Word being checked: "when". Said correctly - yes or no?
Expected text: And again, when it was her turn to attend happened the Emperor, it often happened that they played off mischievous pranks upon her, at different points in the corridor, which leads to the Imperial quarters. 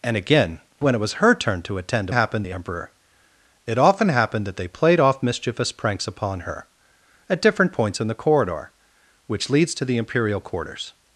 yes